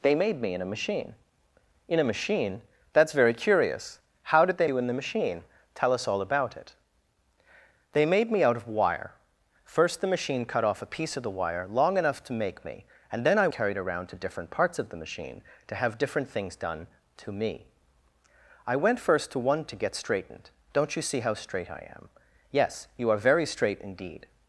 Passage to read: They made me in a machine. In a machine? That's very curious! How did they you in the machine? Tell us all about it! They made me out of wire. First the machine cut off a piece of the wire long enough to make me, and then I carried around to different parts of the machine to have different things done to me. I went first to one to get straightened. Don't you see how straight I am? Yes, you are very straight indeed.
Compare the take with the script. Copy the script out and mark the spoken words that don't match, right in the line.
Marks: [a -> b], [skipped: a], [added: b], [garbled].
They made me in a machine. In a machine? That's very curious! How did they you in the machine? Tell us all about it! They made me out of wire. First the machine cut off a piece of the wire long enough to make me, and then I carried around to different parts of the machine to have different things done to me. I went first to one to get straightened. Don't you see how straight I am? Yes, you are very straight indeed.